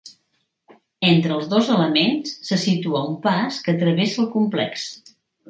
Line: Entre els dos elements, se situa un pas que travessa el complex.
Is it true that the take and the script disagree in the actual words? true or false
false